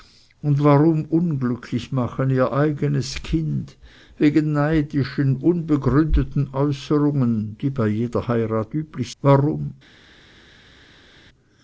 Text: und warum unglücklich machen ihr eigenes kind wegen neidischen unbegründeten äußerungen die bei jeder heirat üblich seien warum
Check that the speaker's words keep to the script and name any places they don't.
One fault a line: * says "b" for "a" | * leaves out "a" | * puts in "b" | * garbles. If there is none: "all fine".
* leaves out "seien"